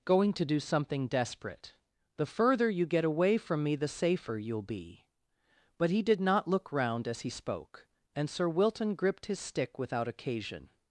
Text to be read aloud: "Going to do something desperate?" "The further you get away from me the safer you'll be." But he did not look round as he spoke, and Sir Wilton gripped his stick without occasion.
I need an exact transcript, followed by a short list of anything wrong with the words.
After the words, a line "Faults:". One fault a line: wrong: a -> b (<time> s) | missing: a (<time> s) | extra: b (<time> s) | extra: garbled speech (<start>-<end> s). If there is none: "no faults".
"Going to do something desperate?" "The further you get away from me the safer you'll be." But he did not look round as he spoke, and Sir Wilton gripped his stick without occasion.
Faults:
no faults